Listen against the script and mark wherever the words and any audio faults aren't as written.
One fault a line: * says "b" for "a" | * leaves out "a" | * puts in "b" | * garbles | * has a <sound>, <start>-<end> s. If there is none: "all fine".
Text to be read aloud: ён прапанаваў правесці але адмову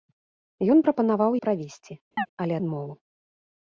* has a chirp, 2.2-2.3 s